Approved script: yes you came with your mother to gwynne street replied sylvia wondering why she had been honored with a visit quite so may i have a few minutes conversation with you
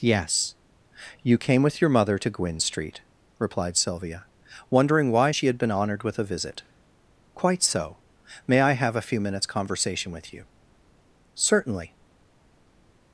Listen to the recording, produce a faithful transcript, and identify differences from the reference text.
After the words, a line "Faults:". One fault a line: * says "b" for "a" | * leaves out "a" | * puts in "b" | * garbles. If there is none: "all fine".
yes you came with your mother to gwynne street replied sylvia wondering why she had been honored with a visit quite so may i have a few minutes conversation with you certainly
Faults:
* puts in "certainly"